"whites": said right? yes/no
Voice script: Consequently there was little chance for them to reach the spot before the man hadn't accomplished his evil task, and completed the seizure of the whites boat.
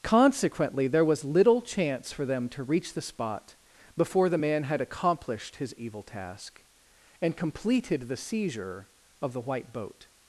no